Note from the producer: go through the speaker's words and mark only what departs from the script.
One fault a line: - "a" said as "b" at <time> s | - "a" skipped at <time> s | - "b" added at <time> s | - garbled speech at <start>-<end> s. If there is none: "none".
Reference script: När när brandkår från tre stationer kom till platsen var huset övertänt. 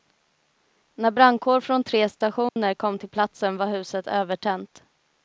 - "när" skipped at 1.1 s